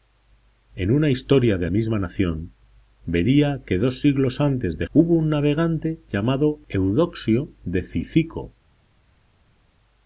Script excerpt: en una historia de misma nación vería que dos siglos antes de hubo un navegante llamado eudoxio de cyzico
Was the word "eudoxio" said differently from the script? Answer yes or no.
no